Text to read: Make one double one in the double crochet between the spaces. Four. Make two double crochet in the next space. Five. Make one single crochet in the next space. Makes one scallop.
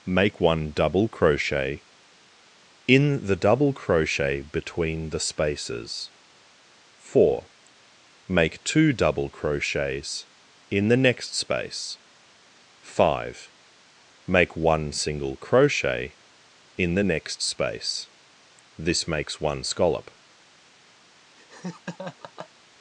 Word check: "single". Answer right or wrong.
right